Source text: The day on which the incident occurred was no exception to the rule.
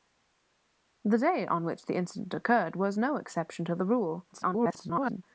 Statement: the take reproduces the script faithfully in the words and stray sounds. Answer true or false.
false